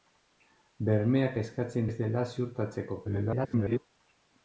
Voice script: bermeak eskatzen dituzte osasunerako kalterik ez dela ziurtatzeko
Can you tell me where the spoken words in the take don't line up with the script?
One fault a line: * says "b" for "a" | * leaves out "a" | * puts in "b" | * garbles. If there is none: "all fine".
* leaves out "dituzte osasunerako kalterik"
* garbles